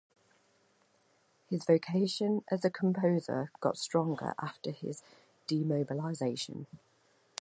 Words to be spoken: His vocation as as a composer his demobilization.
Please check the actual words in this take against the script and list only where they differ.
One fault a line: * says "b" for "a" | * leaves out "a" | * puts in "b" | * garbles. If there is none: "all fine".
* leaves out "as"
* puts in "got stronger after"